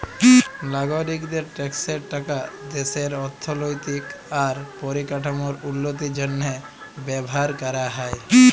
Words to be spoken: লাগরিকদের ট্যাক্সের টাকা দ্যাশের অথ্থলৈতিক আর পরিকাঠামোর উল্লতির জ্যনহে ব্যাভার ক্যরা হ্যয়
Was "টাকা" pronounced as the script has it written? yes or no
yes